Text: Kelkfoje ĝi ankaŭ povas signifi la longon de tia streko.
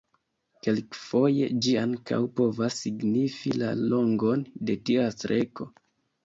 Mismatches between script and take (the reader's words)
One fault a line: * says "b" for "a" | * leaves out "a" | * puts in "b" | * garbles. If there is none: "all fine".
all fine